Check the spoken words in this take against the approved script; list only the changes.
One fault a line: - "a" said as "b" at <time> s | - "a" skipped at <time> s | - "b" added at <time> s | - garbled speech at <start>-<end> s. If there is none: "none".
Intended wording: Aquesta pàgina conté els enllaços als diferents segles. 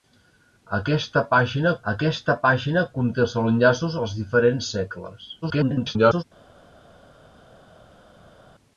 - "aquesta pàgina" added at 1.9 s
- garbled speech at 5.4-6.2 s